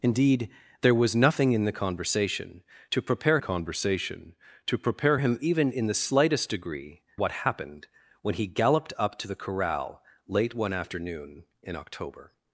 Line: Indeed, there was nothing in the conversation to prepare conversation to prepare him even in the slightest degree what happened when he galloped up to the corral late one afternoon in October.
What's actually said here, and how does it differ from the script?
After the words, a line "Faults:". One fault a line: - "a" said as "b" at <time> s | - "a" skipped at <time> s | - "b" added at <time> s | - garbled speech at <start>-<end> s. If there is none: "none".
Indeed, there was nothing in the conversation to prepare conversation to prepare him even in the slightest degree what happened when he galloped up to the corral late one afternoon in October.
Faults:
none